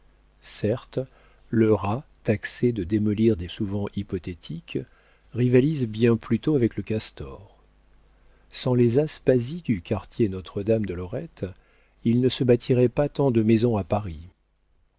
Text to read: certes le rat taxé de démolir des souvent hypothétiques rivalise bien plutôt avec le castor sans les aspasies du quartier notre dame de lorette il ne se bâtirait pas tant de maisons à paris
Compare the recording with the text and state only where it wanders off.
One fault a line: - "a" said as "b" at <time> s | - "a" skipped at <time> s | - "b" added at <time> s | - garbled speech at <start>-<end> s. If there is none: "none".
none